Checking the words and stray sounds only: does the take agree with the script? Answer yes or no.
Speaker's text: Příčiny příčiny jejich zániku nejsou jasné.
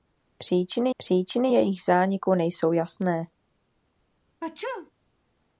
no